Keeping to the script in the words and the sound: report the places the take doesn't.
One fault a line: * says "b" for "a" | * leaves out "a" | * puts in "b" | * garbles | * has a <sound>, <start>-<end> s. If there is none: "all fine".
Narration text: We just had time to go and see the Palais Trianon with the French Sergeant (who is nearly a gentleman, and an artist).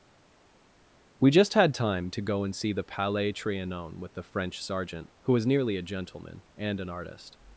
* says "was" for "is"